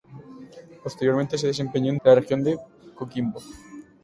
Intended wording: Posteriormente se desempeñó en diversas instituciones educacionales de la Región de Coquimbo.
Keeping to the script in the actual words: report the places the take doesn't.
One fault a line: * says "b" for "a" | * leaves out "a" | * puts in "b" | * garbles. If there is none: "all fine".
* leaves out "diversas instituciones educacionales"